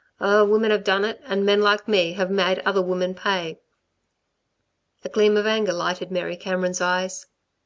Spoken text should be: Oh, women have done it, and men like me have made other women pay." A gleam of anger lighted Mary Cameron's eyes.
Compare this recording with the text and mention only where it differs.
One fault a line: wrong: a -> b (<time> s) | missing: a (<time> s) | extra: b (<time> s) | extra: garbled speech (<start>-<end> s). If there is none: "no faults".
no faults